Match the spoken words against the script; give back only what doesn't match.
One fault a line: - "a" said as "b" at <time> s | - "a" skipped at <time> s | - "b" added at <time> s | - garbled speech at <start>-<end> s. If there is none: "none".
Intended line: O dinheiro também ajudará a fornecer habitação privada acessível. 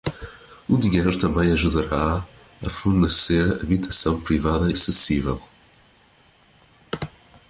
none